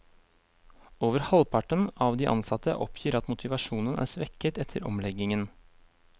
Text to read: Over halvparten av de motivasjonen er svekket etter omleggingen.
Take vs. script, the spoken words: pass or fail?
fail